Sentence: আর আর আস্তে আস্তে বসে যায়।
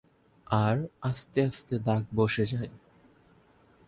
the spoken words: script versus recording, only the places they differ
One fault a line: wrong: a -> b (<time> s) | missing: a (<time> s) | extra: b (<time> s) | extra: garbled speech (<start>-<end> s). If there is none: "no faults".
wrong: আর -> আস্তে (1.0 s)
wrong: আস্তে -> দাগ (1.8 s)